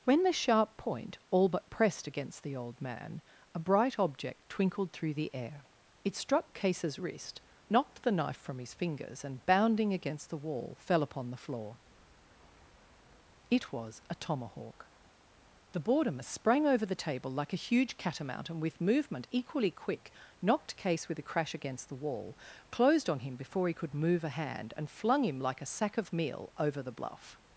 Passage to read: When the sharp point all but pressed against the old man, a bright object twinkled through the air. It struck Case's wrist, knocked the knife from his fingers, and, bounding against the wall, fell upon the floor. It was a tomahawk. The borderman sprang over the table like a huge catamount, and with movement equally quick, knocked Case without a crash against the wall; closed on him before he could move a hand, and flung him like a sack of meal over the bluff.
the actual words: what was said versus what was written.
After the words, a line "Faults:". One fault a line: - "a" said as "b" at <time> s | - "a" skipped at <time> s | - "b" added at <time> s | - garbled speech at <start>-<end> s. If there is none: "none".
When the sharp point all but pressed against the old man, a bright object twinkled through the air. It struck Case's wrist, knocked the knife from his fingers, and, bounding against the wall, fell upon the floor. It was a tomahawk. The borderman sprang over the table like a huge catamount, and with movement equally quick, knocked Case with a crash against the wall; closed on him before he could move a hand, and flung him like a sack of meal over the bluff.
Faults:
- "without" said as "with" at 21.1 s